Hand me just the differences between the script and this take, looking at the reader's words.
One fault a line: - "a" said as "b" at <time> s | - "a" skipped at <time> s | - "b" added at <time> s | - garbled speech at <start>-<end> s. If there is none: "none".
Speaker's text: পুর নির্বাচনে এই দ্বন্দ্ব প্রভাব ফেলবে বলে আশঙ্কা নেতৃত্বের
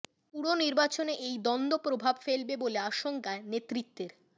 none